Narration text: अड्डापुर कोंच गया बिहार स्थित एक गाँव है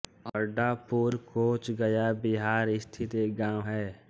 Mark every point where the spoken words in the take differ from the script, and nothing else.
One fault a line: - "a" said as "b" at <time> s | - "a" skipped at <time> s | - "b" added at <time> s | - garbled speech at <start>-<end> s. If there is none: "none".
none